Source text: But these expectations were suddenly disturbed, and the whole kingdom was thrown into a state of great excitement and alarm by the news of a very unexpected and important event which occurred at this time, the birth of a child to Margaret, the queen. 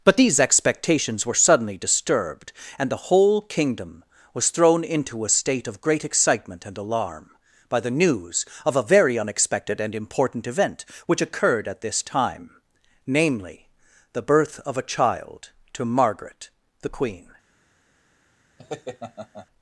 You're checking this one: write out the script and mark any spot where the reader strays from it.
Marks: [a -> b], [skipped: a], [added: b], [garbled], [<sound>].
But these expectations were suddenly disturbed, and the whole kingdom was thrown into a state of great excitement and alarm by the news of a very unexpected and important event which occurred at this time, [added: namely] the birth of a child to Margaret, the queen. [laugh]